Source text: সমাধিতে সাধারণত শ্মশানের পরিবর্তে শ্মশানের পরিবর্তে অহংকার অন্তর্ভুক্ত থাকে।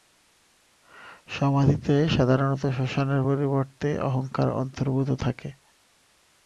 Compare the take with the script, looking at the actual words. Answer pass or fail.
fail